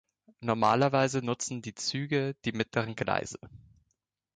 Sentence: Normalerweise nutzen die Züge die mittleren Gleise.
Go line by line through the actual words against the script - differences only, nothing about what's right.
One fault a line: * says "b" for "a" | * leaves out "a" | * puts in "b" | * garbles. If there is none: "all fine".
all fine